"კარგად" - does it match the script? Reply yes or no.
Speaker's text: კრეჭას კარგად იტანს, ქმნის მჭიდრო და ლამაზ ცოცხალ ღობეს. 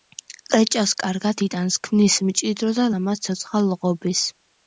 yes